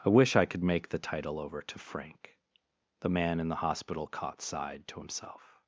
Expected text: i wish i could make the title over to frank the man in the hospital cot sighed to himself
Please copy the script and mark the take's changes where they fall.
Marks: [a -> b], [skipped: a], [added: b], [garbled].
i wish i could make the title over to frank the man in the hospital cot sighed to himself